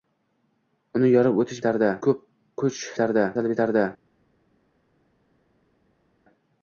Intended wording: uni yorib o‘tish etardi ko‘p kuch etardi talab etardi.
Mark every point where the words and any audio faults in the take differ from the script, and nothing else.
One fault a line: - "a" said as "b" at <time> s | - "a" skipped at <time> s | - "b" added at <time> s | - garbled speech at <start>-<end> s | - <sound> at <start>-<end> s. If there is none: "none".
none